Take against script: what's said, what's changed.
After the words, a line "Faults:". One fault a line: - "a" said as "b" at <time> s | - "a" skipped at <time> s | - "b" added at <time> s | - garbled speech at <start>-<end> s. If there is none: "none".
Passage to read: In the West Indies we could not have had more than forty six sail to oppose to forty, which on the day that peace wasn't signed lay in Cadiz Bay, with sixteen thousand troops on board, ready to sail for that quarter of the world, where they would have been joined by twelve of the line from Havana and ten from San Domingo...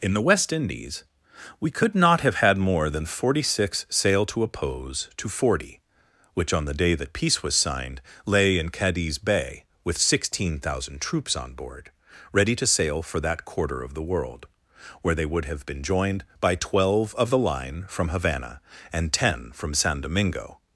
In the West Indies we could not have had more than forty six sail to oppose to forty, which on the day that peace was signed lay in Cadiz Bay, with sixteen thousand troops on board, ready to sail for that quarter of the world, where they would have been joined by twelve of the line from Havana and ten from San Domingo...
Faults:
- "wasn't" said as "was" at 7.4 s